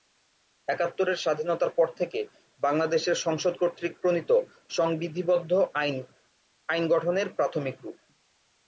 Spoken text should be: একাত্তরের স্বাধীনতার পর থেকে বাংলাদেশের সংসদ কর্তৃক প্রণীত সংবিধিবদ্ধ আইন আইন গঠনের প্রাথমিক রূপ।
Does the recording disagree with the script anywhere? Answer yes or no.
no